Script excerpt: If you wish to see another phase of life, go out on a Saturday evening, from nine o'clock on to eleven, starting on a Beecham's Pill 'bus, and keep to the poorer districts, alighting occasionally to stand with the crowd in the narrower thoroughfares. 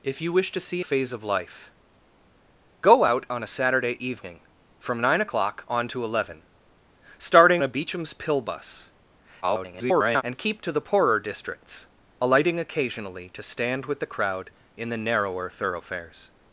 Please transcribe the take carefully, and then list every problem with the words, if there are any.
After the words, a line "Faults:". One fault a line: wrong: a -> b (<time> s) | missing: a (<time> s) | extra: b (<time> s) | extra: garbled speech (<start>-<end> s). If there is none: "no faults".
If you wish to see phase of life, go out on a Saturday evening, from nine o'clock on to eleven, starting a Beecham's Pill 'bus, [garbled] and keep to the poorer districts, alighting occasionally to stand with the crowd in the narrower thoroughfares.
Faults:
missing: another (0.8 s)
missing: on (7.6 s)
extra: garbled speech (9.4-10.2 s)